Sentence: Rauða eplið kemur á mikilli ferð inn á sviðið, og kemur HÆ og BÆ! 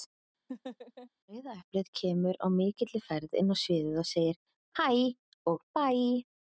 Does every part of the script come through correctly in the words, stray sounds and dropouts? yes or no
no